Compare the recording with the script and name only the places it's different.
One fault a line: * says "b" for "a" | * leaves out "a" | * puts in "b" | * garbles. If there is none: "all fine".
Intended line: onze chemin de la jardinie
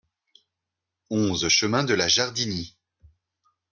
all fine